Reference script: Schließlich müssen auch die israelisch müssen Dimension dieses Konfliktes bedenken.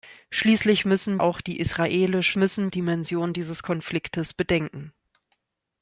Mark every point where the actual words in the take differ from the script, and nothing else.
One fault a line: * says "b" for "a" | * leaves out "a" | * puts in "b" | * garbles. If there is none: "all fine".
all fine